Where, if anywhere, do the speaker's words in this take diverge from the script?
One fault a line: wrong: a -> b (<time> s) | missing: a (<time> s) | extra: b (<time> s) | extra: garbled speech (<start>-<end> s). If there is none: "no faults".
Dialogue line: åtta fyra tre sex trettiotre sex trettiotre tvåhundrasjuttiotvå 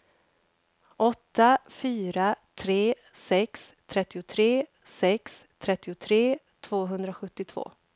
no faults